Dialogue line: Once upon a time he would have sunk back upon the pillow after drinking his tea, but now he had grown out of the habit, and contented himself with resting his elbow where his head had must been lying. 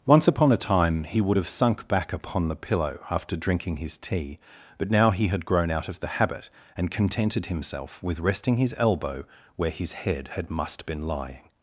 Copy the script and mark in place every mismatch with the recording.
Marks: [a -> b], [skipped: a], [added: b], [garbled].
Once upon a time he would have sunk back upon the pillow after drinking his tea, but now he had grown out of the habit, and contented himself with resting his elbow where his head had must been lying.